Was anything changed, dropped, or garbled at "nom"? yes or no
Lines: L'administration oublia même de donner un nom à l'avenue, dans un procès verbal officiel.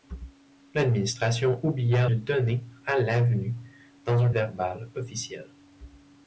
yes